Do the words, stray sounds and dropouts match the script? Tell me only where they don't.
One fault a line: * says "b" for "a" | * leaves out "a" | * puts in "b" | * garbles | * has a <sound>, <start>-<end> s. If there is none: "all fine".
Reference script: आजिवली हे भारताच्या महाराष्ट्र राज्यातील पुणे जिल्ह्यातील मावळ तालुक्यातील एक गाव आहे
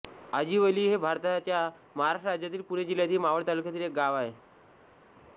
all fine